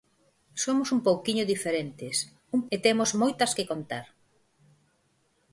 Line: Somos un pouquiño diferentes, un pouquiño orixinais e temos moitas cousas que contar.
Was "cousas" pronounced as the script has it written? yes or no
no